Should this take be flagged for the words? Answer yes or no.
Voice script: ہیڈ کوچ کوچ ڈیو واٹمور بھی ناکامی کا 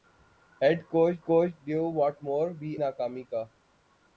no